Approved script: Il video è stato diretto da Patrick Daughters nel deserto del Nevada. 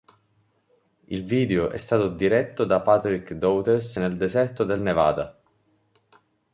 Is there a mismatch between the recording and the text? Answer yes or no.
no